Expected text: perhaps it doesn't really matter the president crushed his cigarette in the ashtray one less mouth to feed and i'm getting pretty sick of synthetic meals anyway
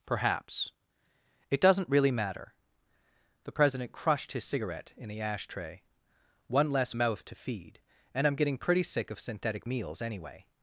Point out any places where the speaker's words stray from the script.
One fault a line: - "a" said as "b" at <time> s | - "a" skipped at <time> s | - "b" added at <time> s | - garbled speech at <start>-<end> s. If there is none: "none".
none